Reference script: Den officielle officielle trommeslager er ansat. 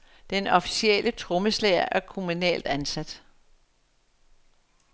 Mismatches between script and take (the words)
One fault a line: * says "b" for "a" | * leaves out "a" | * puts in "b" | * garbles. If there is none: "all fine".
* leaves out "officielle"
* puts in "kommunalt"